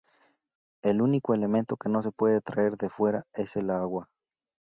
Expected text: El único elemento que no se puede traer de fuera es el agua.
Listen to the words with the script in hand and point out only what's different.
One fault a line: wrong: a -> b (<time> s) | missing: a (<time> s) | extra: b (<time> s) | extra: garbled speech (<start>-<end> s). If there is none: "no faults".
no faults